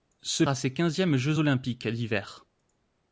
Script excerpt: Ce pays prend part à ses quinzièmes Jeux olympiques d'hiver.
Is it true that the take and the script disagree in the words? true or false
true